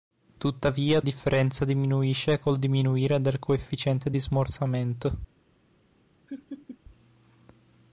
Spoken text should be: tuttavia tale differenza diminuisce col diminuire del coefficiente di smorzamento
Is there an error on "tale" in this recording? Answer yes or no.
yes